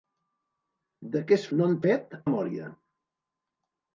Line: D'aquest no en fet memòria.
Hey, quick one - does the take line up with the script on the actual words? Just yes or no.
yes